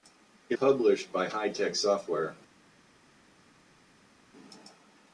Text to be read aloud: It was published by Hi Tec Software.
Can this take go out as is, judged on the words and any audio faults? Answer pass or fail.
fail